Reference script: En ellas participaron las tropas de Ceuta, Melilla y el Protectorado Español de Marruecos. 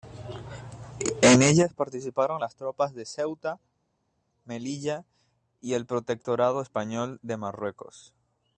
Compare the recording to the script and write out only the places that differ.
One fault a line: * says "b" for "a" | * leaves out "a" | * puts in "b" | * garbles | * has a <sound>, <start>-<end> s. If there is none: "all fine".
all fine